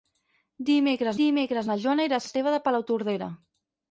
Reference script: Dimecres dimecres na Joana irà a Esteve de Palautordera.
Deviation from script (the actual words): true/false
false